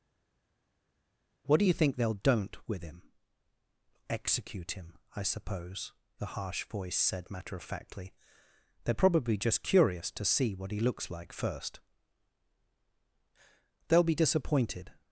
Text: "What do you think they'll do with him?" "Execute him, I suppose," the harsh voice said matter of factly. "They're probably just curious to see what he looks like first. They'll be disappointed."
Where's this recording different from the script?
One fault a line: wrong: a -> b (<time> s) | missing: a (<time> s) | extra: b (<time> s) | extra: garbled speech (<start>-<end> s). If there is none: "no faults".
wrong: do -> don't (2.1 s)